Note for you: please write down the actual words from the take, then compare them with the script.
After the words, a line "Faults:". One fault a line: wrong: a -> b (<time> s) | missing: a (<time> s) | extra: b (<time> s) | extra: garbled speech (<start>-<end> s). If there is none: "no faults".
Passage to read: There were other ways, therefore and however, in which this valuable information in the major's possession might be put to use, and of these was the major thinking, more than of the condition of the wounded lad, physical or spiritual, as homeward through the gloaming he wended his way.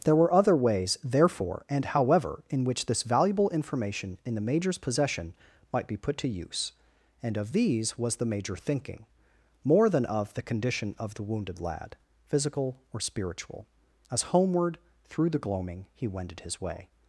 There were other ways, therefore and however, in which this valuable information in the major's possession might be put to use, and of these was the major thinking, more than of the condition of the wounded lad, physical or spiritual, as homeward through the gloaming he wended his way.
Faults:
no faults